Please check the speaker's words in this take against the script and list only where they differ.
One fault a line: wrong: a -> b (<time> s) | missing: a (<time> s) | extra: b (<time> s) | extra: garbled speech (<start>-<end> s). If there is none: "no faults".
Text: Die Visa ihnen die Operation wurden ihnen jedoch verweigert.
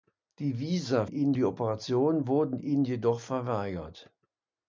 no faults